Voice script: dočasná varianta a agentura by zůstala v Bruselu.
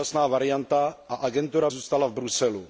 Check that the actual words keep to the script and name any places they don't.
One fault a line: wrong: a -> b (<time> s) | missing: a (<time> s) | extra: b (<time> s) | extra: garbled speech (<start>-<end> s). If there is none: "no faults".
missing: by (1.7 s)